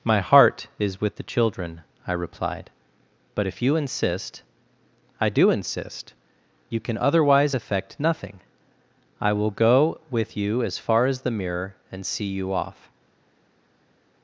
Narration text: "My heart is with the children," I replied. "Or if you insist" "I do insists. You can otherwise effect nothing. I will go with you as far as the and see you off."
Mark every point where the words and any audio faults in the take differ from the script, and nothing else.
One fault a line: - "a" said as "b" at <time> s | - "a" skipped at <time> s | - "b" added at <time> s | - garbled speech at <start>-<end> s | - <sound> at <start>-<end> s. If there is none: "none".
- "Or" said as "But" at 3.3 s
- "insists" said as "insist" at 5.5 s
- "mirror" added at 11.3 s